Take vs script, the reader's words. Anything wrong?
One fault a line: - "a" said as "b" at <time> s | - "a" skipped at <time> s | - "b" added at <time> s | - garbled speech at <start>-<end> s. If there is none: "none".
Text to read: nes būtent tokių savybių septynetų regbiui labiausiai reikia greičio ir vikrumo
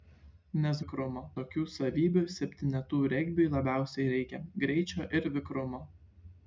- "būtent" said as "vikrumo" at 0.8 s